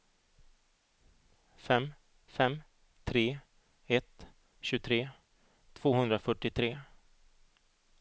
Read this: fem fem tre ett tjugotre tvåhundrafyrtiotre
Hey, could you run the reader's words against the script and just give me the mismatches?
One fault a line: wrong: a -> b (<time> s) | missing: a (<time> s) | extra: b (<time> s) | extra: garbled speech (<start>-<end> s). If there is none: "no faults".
no faults